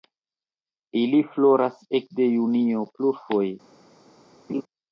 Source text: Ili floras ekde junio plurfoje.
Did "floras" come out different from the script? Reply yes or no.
no